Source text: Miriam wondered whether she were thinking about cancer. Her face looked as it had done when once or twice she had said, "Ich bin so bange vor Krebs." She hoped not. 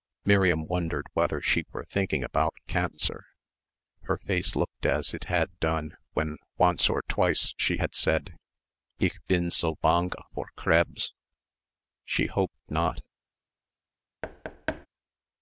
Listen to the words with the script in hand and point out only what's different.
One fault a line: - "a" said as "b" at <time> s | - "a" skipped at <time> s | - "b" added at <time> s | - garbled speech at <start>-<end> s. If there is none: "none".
none